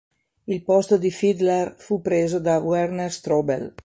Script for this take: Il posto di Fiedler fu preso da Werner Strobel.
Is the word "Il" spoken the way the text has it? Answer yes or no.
yes